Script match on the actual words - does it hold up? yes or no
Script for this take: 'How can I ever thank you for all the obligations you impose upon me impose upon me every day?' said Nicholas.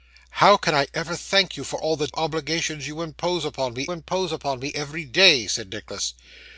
yes